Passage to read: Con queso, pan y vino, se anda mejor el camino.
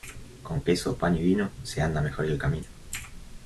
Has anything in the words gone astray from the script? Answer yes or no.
no